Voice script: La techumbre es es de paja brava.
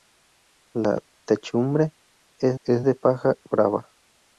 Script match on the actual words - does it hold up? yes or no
yes